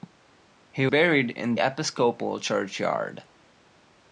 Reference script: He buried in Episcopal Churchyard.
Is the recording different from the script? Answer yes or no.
no